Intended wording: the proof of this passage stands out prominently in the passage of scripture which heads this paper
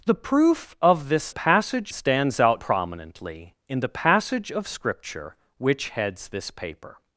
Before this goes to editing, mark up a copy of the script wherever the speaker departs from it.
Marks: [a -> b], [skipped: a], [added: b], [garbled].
the proof of this passage stands out prominently in the passage of scripture which heads this paper